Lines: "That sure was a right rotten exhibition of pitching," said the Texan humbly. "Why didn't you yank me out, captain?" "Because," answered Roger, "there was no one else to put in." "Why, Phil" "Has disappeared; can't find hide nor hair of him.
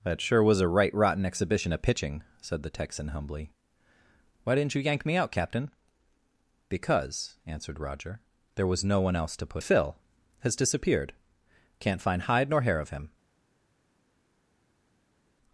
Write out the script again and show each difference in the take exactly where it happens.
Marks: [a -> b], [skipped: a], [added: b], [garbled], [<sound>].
"That sure was a right rotten exhibition of pitching," said the Texan humbly. "Why didn't you yank me out, captain?" "Because," answered Roger, "there was no one else to put [skipped: in." "Why,] Phil" "Has disappeared; can't find hide nor hair of him.